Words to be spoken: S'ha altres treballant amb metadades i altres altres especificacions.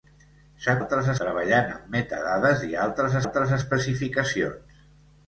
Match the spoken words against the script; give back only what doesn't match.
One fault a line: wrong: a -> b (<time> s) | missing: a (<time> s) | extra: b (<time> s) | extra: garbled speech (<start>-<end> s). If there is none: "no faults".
no faults